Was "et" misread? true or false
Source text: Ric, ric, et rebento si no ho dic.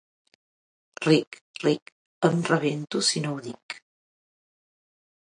true